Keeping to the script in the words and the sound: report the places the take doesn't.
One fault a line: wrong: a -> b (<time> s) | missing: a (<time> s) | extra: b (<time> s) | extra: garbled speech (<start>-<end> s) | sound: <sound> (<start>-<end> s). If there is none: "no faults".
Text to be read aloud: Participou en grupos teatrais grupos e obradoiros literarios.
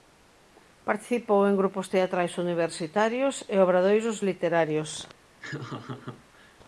wrong: grupos -> universitarios (2.4 s)
sound: laugh (5.4-6.6 s)